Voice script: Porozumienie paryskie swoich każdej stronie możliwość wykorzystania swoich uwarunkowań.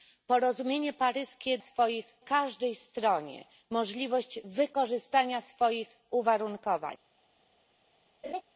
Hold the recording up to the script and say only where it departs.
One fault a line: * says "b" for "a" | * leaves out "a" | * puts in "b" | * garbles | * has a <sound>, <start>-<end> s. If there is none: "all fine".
* has a laugh, 8.2-8.4 s